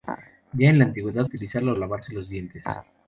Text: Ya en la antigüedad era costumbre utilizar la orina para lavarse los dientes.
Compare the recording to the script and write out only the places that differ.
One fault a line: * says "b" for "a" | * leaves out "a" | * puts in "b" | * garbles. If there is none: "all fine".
* leaves out "era costumbre"
* leaves out "orina para"